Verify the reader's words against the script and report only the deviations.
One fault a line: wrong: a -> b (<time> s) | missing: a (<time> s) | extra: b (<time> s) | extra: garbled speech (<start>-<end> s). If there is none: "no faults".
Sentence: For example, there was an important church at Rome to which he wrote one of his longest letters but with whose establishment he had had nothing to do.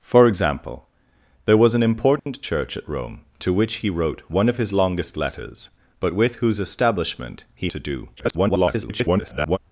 missing: had had nothing (7.7 s)
extra: garbled speech (8.2-9.6 s)